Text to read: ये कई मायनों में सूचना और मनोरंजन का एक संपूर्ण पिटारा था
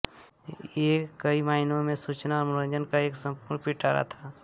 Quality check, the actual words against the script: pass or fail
pass